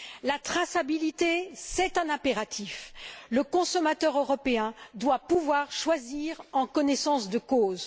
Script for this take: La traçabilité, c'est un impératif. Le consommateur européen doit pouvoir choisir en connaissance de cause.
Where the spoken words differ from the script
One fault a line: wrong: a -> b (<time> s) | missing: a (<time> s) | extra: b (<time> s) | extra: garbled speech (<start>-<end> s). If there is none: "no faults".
no faults